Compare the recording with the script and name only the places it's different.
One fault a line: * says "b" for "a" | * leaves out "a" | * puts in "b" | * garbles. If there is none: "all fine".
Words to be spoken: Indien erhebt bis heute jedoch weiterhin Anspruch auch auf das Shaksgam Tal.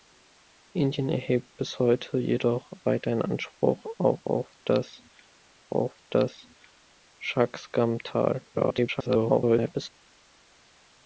* puts in "auf das"
* garbles